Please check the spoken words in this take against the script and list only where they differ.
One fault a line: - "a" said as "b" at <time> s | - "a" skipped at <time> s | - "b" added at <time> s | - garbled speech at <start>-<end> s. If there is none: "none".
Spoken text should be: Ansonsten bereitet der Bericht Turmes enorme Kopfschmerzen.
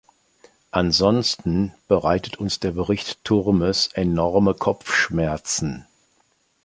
- "uns" added at 2.4 s